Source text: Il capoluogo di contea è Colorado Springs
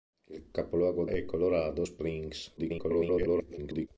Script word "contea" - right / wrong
wrong